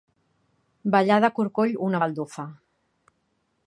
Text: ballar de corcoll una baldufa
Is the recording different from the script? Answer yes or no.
no